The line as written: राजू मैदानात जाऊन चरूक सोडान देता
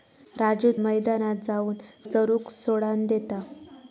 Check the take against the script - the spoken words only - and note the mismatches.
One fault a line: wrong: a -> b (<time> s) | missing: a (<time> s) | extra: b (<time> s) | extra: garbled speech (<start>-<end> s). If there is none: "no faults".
no faults